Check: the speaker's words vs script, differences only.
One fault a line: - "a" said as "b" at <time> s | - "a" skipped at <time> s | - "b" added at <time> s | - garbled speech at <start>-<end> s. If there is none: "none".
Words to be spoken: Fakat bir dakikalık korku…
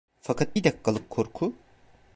none